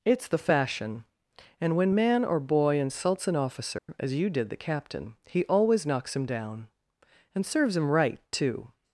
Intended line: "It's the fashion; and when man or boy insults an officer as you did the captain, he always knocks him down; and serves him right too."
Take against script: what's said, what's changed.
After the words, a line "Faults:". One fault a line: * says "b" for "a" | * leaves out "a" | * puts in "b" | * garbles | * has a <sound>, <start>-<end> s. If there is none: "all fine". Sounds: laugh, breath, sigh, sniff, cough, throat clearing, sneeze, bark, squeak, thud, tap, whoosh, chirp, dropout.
"It's the fashion; and when man or boy insults an officer as you did the captain, he always knocks him down; and serves him right too."
Faults:
* has a dropout, 3.8-3.9 s